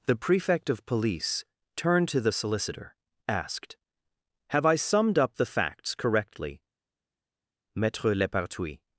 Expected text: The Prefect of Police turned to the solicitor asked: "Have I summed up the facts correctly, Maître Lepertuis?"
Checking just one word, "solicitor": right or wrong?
right